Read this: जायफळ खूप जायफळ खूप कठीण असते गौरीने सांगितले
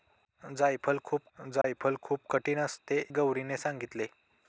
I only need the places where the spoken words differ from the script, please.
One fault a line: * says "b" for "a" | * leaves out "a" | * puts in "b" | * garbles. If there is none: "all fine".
all fine